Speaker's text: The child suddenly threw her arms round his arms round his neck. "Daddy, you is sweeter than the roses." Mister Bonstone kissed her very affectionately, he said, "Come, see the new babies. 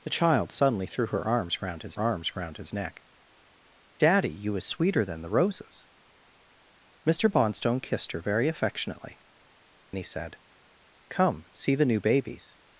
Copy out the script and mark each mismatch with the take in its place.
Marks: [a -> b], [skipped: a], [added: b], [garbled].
The child suddenly threw her arms round his arms round his neck. "Daddy, you is sweeter than the roses." Mister Bonstone kissed her very affectionately, he said, "Come, see the new babies.